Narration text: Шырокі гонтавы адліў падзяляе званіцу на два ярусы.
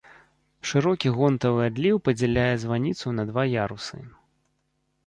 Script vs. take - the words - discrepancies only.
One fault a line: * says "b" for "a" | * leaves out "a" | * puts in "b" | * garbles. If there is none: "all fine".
all fine